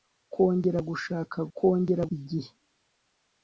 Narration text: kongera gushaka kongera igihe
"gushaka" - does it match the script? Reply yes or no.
yes